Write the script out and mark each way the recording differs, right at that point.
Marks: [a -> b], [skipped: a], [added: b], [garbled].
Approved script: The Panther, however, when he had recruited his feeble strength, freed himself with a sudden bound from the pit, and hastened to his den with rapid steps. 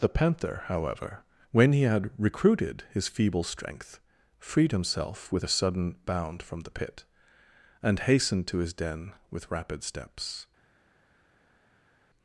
The Panther, however, when he had recruited his feeble strength, freed himself with a sudden bound from the pit, and hastened to his den with rapid steps.